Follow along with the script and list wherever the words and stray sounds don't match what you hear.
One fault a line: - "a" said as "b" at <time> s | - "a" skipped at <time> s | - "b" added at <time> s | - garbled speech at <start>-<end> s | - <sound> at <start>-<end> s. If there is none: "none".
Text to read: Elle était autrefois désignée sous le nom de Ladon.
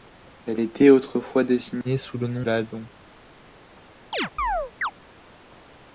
- "de" skipped at 2.5 s
- chirp at 4.1-4.9 s